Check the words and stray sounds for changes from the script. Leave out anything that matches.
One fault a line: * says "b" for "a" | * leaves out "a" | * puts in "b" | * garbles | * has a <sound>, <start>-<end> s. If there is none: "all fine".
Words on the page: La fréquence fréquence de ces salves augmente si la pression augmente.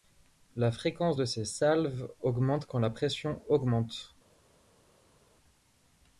* leaves out "fréquence"
* says "quand" for "si"